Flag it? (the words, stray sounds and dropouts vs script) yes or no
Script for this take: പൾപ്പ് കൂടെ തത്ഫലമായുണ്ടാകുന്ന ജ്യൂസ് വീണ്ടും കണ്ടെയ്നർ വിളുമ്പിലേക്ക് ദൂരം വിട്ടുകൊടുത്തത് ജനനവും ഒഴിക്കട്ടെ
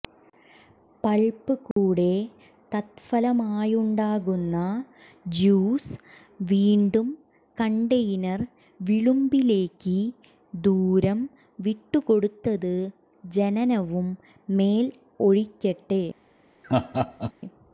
yes